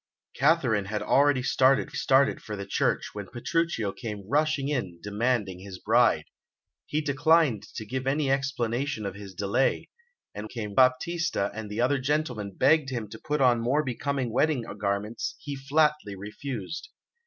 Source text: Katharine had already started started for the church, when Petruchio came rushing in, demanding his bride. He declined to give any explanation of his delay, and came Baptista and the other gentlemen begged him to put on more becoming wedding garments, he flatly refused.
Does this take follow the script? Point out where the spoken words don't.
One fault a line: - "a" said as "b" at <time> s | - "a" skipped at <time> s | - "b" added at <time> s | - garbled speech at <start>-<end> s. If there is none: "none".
none